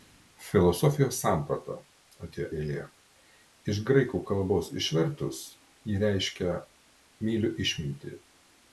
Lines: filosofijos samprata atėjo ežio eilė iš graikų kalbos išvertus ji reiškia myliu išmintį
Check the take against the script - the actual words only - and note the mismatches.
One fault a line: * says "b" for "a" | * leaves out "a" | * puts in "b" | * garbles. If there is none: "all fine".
* leaves out "ežio"